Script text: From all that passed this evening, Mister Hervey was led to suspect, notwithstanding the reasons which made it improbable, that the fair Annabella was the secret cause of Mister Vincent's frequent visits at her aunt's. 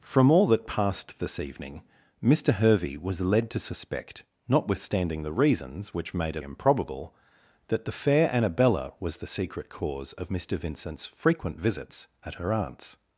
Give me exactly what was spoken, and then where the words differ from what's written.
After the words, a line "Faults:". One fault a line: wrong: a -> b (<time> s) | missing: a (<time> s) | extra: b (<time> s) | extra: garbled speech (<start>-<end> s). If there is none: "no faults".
From all that passed this evening, Mister Hervey was led to suspect, notwithstanding the reasons which made it improbable, that the fair Annabella was the secret cause of Mister Vincent's frequent visits at her aunt's.
Faults:
no faults